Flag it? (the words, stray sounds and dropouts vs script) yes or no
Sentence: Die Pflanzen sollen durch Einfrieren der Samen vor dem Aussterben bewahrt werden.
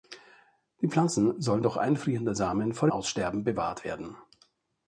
yes